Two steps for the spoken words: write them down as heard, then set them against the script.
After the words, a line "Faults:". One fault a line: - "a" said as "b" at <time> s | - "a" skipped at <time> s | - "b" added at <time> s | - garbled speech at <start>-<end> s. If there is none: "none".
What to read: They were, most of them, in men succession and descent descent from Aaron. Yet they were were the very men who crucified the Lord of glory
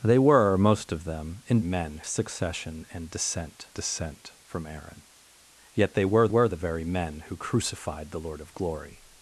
They were, most of them, in men succession and descent descent from Aaron. Yet they were were the very men who crucified the Lord of glory
Faults:
none